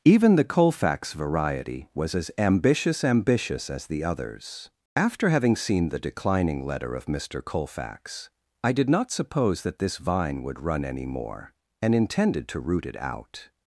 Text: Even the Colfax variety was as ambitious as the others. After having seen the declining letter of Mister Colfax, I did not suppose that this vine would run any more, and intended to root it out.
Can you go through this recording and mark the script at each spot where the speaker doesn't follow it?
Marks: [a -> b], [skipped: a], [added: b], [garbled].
Even the Colfax variety was as ambitious [added: ambitious] as the others. After having seen the declining letter of Mister Colfax, I did not suppose that this vine would run any more, and intended to root it out.